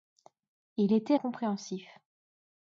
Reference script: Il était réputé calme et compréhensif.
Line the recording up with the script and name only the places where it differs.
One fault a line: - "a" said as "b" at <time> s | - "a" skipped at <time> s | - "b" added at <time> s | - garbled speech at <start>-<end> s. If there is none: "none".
- "réputé calme et" skipped at 1.1 s